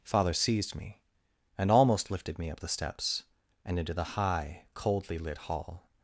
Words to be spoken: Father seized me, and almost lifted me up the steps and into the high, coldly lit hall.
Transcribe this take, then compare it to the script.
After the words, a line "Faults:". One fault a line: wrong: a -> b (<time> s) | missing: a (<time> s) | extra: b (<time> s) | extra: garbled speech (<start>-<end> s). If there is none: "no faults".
Father seized me, and almost lifted me up the steps and into the high, coldly lit hall.
Faults:
no faults